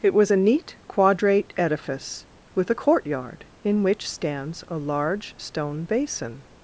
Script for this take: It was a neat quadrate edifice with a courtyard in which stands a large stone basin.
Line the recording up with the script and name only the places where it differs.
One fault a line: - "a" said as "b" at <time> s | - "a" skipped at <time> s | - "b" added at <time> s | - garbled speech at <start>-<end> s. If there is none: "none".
none